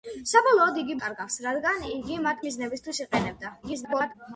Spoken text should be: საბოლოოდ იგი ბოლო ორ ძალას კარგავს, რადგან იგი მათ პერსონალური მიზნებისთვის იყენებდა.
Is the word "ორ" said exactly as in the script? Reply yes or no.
no